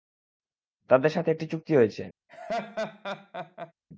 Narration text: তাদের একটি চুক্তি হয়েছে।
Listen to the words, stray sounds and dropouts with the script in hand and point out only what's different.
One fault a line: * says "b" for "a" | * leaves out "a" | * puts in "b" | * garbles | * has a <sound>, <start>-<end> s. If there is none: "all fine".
* puts in "সাথে"
* has a laugh, 2.3-3.7 s